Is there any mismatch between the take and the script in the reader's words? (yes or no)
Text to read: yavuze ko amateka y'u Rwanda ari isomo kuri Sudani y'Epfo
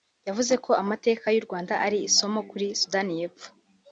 no